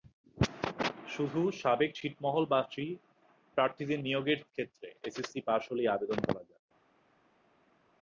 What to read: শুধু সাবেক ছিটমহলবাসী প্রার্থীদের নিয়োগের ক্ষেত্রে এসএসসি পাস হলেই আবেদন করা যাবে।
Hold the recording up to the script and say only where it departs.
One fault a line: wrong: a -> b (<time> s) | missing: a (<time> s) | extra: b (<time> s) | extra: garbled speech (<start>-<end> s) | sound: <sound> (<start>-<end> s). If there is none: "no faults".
no faults